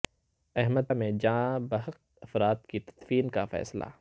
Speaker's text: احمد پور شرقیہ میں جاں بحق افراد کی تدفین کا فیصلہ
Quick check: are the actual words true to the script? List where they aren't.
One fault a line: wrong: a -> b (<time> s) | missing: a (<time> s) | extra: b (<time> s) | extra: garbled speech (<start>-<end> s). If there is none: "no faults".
missing: پور شرقیہ (0.8 s)